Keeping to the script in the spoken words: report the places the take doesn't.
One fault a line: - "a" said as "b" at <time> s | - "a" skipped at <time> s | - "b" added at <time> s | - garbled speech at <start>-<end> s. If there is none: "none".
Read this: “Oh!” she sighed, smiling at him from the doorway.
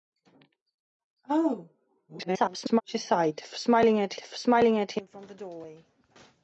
- garbled speech at 2.1-2.8 s
- "smiling at" added at 4.2 s